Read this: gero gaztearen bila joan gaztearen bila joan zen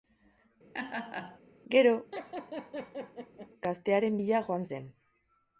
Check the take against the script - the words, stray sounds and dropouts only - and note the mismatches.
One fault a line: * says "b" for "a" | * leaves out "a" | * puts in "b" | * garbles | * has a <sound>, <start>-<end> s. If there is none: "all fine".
* has a laugh, 0.7-1.4 s
* has a laugh, 2.1-3.5 s
* leaves out "gaztearen bila joan"